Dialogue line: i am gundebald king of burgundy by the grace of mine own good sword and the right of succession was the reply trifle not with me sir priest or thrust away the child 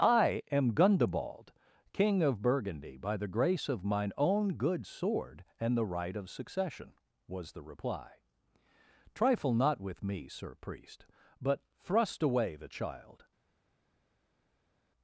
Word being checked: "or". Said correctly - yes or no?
no